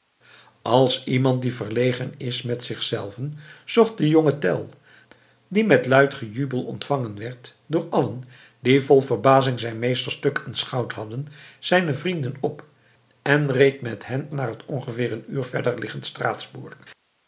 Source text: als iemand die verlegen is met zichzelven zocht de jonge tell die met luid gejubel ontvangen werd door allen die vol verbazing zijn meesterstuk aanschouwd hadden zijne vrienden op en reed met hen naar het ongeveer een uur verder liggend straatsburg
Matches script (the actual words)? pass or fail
pass